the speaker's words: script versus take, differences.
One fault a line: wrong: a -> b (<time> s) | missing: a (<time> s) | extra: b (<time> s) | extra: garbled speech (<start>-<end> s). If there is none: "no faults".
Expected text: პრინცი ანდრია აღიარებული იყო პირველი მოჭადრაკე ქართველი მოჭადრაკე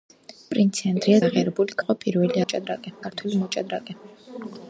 no faults